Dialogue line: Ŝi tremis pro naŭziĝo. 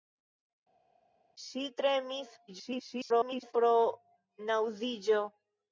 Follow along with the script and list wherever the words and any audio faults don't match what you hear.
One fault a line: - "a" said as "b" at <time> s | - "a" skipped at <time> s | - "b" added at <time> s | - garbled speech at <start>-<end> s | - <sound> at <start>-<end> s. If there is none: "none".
- garbled speech at 2.5-3.5 s